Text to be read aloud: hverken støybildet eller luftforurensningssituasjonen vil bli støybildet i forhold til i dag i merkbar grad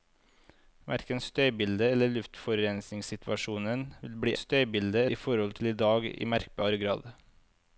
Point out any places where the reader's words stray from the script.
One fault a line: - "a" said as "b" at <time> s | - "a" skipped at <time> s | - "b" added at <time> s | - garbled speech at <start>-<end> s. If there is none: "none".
none